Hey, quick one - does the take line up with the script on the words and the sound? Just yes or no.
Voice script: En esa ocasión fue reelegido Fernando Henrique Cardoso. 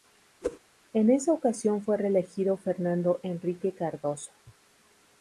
no